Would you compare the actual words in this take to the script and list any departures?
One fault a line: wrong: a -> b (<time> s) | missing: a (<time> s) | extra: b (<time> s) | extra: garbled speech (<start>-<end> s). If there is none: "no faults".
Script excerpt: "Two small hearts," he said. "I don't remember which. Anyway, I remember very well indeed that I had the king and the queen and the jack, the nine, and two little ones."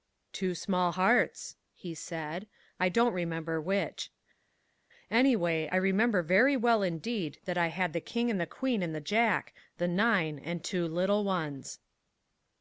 no faults